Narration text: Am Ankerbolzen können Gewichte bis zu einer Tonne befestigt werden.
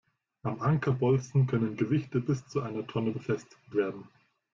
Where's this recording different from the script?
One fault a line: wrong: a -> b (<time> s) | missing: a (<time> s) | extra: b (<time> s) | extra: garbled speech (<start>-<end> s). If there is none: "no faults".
no faults